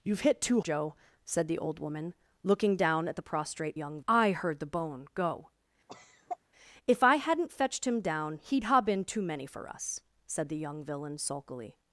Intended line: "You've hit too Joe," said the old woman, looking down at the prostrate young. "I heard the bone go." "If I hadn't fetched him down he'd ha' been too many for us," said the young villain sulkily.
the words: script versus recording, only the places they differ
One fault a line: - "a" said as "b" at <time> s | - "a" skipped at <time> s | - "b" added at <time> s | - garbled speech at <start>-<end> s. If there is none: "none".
none